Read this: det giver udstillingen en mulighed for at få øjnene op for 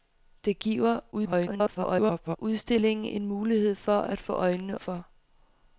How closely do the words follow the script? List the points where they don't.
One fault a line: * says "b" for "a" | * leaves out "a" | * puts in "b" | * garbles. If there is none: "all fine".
* garbles
* leaves out "op"